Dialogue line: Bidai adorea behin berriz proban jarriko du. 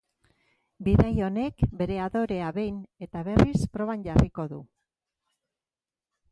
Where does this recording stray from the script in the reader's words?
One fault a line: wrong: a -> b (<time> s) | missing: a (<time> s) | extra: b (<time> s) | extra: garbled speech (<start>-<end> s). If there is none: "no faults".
extra: honek bere (1.2 s)
extra: eta (3.1 s)